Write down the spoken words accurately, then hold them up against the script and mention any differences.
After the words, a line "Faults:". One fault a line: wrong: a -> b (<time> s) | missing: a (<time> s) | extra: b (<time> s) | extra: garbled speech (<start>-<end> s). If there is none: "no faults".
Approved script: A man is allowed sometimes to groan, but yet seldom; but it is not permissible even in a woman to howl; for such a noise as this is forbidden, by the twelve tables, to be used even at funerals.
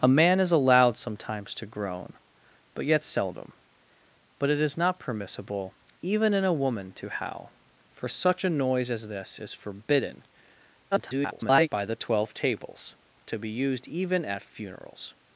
A man is allowed sometimes to groan, but yet seldom; but it is not permissible even in a woman to howl; for such a noise as this is forbidden, [garbled] by the twelve tables, to be used even at funerals.
Faults:
extra: garbled speech (10.9-11.7 s)